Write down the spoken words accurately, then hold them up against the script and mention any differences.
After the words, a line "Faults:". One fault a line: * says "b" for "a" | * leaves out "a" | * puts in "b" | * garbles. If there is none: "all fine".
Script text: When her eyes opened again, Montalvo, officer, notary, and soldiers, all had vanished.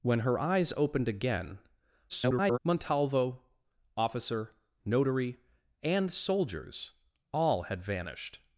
When her eyes opened again, [garbled] Montalvo, officer, notary, and soldiers, all had vanished.
Faults:
* garbles